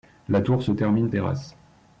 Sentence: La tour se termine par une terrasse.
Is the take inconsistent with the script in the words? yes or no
yes